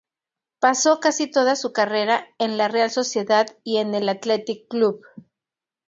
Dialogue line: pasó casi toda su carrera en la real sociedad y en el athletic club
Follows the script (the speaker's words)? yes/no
yes